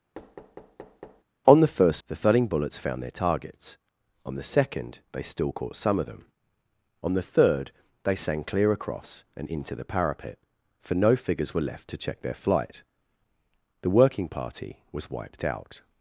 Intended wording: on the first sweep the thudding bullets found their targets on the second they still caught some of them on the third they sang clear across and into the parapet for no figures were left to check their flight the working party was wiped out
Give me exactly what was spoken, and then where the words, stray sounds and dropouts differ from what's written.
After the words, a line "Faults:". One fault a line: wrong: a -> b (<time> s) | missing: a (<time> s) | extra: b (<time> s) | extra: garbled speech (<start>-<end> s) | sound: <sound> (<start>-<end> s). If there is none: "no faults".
on the first the thudding bullets found their targets on the second they still caught some of them on the third they sang clear across and into the parapet for no figures were left to check their flight the working party was wiped out
Faults:
sound: thud (0.1-1.2 s)
missing: sweep (2.0 s)